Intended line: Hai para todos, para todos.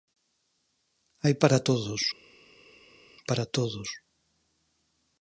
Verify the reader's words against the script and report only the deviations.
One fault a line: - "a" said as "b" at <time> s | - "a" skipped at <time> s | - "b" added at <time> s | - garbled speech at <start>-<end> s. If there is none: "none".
none